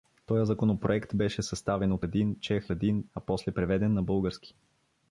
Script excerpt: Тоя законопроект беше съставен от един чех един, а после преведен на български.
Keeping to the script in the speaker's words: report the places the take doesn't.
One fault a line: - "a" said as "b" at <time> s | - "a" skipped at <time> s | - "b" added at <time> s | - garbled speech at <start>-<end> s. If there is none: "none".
none